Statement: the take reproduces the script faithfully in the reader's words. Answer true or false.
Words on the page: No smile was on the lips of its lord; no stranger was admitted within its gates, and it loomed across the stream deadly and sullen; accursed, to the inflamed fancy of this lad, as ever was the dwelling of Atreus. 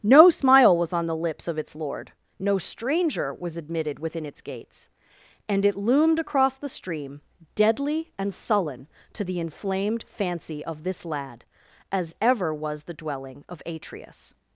false